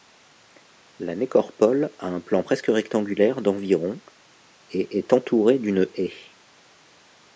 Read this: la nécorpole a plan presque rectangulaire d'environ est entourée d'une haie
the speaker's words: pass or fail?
fail